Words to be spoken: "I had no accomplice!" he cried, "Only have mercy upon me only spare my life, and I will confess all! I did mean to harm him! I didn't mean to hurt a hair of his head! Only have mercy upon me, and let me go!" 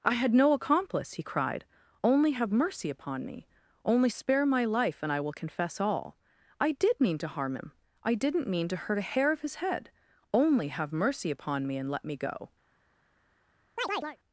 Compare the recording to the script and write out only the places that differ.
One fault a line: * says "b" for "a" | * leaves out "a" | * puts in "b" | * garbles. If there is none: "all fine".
all fine